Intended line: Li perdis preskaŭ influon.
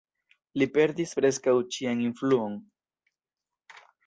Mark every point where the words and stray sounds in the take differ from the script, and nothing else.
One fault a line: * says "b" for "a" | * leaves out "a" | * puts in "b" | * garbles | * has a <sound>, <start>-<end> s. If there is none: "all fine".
* puts in "ĉian"